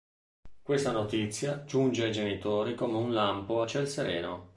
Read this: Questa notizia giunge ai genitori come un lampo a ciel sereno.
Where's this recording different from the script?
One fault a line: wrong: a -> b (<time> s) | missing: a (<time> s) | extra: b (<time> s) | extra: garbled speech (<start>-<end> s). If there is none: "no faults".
no faults